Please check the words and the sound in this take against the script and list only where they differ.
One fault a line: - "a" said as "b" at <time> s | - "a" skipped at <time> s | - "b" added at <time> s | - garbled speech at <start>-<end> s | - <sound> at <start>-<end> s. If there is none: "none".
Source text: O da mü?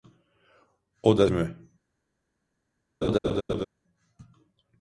- laugh at 3.0-3.7 s